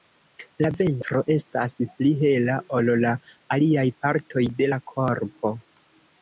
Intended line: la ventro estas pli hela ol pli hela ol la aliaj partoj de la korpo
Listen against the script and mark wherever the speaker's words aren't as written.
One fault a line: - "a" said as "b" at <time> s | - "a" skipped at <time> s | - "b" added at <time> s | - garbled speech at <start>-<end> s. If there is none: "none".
- "pli hela ol" skipped at 2.9 s